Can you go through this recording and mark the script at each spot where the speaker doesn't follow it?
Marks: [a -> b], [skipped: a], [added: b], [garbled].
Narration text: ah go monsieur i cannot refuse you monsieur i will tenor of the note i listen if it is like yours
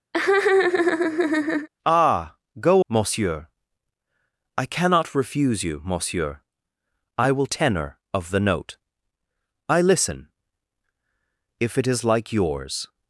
ah go monsieur i cannot refuse you monsieur i will tenor of the note i listen if it is like yours